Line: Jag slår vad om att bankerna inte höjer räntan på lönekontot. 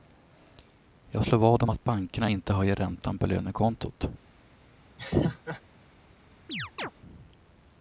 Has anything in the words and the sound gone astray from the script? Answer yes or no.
yes